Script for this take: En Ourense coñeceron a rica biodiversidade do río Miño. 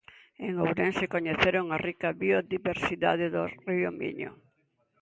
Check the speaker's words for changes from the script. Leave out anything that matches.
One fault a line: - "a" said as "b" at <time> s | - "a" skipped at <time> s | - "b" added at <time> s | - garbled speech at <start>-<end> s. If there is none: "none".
none